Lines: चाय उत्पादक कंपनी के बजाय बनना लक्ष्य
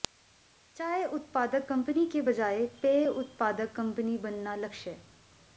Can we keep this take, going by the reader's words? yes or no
no